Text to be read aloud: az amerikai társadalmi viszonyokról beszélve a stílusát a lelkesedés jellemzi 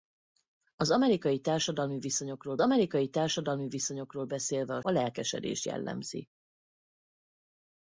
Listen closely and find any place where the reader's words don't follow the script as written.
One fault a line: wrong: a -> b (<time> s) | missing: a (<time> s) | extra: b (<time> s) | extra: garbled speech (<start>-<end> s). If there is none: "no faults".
extra: amerikai társadalmi viszonyokról (2.6 s)
missing: stílusát (4.8 s)